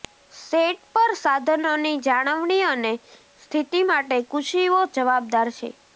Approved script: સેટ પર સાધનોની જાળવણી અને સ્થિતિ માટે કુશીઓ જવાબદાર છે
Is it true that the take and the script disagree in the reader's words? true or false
false